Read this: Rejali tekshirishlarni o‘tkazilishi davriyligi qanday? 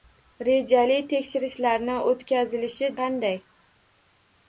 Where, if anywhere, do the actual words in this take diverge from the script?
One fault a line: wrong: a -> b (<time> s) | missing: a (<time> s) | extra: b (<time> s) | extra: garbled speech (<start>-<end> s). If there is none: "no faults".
missing: davriyligi (2.9 s)